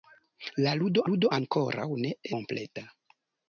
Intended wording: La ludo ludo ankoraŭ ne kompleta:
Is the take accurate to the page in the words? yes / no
yes